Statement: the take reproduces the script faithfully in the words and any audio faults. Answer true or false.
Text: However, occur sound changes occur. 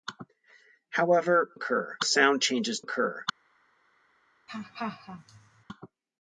false